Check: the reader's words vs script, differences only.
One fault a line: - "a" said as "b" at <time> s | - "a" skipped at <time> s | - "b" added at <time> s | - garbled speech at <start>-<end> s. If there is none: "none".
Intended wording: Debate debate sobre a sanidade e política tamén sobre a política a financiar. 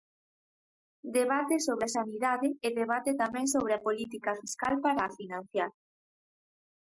- "debate" skipped at 1.6 s
- "política" said as "debate" at 2.8 s
- "fiscal para" added at 4.4 s